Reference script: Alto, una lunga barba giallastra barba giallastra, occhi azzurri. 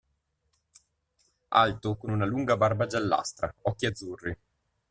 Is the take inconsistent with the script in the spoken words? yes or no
yes